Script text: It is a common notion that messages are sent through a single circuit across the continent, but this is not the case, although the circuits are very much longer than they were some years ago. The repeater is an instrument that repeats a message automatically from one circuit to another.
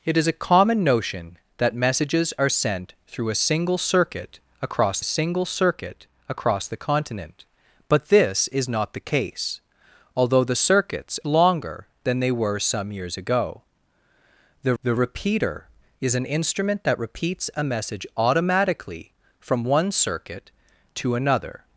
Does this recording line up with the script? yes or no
no